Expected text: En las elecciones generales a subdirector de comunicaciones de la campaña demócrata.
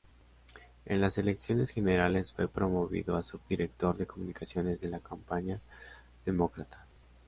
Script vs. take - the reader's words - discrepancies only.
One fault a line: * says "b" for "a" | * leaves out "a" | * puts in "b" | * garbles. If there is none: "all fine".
* puts in "fue promovido"